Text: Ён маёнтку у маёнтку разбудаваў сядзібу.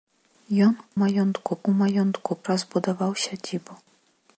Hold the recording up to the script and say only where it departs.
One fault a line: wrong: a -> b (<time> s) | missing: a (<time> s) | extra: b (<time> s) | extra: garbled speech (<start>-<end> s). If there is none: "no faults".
no faults